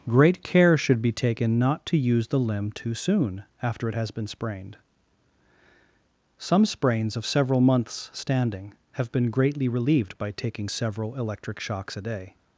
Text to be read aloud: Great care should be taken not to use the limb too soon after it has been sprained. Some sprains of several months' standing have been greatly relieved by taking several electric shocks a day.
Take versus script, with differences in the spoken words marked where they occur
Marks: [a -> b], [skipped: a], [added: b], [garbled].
Great care should be taken not to use the limb too soon after it has been sprained. Some sprains of several months' standing have been greatly relieved by taking several electric shocks a day.